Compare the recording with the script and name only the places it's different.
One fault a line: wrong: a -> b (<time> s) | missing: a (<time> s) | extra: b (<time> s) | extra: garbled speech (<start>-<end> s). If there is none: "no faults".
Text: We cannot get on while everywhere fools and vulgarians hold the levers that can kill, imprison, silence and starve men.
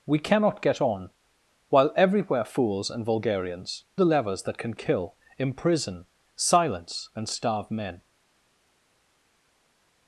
missing: hold (3.9 s)